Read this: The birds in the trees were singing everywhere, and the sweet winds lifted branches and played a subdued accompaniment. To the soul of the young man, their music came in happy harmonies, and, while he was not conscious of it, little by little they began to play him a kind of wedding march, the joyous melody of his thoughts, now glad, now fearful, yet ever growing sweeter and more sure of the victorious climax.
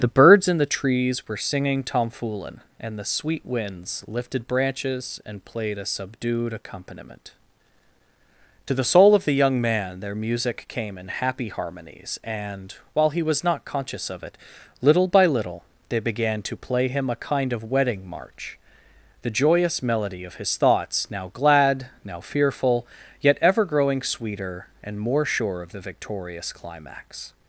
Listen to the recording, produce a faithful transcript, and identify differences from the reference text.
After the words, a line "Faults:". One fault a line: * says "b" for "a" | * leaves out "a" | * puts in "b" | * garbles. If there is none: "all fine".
The birds in the trees were singing tomfoolin, and the sweet winds lifted branches and played a subdued accompaniment. To the soul of the young man, their music came in happy harmonies, and, while he was not conscious of it, little by little they began to play him a kind of wedding march, the joyous melody of his thoughts, now glad, now fearful, yet ever growing sweeter and more sure of the victorious climax.
Faults:
* says "tomfoolin" for "everywhere"